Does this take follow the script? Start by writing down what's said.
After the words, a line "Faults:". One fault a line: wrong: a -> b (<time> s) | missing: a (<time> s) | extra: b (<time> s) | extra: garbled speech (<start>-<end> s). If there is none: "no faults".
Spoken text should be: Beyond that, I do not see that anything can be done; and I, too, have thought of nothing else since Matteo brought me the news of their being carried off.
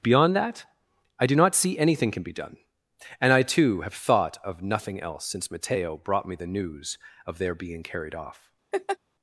Beyond that, I do not see anything can be done; and I, too, have thought of nothing else since Matteo brought me the news of their being carried off.
Faults:
missing: that (1.8 s)